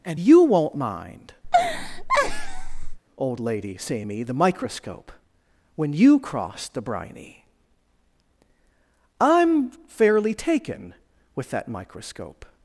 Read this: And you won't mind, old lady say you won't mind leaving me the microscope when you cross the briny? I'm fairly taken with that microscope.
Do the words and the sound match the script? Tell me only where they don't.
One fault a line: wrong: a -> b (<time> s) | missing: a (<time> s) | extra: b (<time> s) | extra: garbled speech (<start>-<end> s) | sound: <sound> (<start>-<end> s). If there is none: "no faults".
sound: laugh (1.4-3.0 s)
missing: you won't mind leaving (4.0 s)